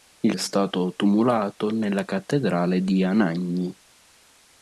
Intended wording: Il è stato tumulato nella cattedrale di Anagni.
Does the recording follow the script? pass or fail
pass